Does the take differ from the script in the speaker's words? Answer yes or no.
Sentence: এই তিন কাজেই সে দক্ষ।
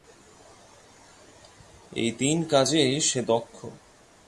no